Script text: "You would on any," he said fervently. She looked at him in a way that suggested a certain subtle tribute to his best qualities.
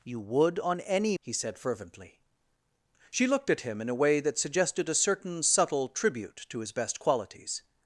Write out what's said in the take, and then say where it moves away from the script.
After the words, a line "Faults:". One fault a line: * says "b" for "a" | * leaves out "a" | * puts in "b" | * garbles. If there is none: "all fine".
"You would on any," he said fervently. She looked at him in a way that suggested a certain subtle tribute to his best qualities.
Faults:
all fine